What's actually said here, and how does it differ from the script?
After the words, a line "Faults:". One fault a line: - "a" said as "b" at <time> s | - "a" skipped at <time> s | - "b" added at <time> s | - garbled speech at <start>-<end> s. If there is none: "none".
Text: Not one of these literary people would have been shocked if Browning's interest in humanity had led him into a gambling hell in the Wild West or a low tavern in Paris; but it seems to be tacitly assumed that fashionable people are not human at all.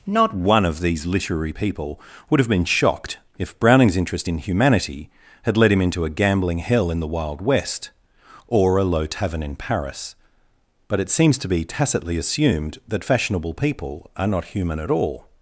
Not one of these literary people would have been shocked if Browning's interest in humanity had led him into a gambling hell in the Wild West or a low tavern in Paris; but it seems to be tacitly assumed that fashionable people are not human at all.
Faults:
none